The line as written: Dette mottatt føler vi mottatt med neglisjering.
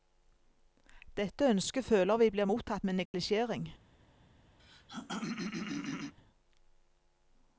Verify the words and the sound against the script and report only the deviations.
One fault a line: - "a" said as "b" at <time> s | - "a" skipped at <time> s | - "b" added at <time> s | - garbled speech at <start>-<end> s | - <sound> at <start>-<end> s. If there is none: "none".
- "mottatt" said as "ønsket" at 1.5 s
- "blir" added at 2.3 s
- dropout at 3.1-3.1 s
- throat clearing at 4.6-6.1 s